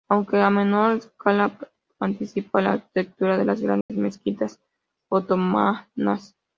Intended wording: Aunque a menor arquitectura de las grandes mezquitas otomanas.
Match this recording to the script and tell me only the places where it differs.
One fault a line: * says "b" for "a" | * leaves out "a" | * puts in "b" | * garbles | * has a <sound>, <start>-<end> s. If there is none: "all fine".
* puts in "escala anticipa la"
* has a dropout, 3.8-3.9 s